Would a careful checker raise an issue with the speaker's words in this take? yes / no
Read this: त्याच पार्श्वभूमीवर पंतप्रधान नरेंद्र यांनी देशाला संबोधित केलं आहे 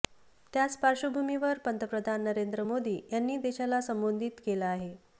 yes